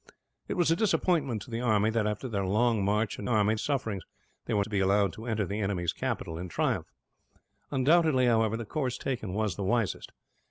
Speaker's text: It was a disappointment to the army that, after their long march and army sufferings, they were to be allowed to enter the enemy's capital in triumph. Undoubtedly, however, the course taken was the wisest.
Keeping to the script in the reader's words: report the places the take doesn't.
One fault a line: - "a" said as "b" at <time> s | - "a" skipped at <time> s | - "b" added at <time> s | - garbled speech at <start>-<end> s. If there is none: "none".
none